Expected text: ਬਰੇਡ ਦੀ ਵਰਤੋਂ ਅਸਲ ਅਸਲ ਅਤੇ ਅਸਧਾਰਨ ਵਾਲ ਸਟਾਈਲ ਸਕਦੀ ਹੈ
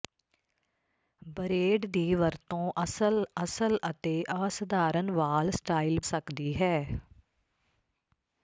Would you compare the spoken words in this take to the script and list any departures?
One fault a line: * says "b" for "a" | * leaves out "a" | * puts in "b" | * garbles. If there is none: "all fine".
all fine